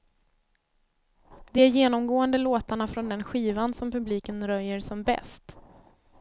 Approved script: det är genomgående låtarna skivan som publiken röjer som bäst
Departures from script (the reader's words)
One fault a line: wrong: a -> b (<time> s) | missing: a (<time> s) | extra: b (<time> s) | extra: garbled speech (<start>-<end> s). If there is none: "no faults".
extra: från den (2.9 s)